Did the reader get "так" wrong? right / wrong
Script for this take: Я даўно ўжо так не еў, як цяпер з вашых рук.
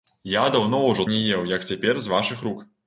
wrong